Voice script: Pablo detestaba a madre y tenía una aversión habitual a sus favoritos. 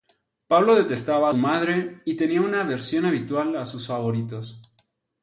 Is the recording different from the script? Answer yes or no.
no